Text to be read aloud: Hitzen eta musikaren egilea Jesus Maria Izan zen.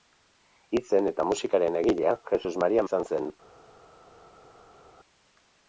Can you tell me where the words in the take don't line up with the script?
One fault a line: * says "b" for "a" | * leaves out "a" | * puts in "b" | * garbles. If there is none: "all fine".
all fine